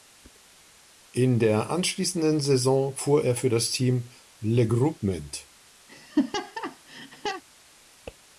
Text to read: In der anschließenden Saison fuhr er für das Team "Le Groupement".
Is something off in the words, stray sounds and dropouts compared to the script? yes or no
yes